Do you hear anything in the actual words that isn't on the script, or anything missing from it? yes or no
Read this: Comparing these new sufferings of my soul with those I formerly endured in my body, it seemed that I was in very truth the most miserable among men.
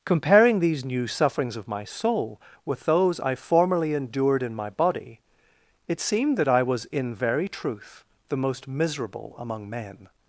no